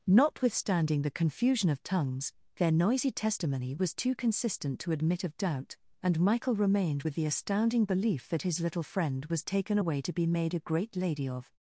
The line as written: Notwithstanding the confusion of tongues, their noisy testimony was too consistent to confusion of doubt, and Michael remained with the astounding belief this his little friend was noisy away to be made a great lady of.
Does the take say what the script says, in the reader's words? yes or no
no